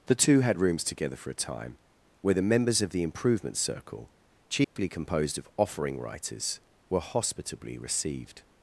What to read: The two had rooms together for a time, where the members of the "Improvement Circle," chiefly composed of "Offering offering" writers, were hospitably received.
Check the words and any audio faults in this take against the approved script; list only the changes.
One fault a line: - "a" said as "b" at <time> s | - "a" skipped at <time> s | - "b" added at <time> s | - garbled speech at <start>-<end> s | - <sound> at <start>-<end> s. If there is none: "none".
- dropout at 4.6-4.8 s
- "offering" skipped at 6.0 s